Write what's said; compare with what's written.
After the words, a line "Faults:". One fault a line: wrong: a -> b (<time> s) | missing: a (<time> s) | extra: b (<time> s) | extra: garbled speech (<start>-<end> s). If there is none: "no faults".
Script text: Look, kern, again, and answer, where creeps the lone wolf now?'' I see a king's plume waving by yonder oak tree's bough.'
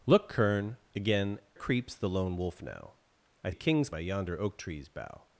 Look, kern, again, creeps the lone wolf now?'' I a king's by yonder oak tree's bough.'
Faults:
missing: and answer where (1.4 s)
missing: see (3.5 s)
missing: plume waving (3.9 s)